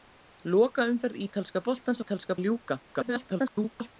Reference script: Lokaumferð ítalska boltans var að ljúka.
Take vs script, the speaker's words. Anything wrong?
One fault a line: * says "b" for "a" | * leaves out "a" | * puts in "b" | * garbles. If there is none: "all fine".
* says "ítalska" for "var"
* garbles